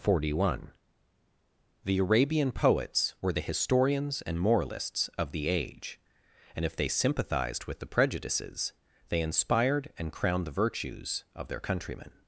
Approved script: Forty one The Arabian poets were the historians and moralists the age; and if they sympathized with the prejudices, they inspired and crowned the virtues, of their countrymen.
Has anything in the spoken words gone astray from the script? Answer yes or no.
yes